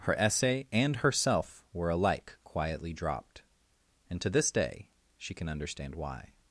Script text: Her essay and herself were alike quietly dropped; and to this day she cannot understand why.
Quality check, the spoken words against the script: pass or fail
fail